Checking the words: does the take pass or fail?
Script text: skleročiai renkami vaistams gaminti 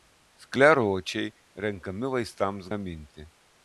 pass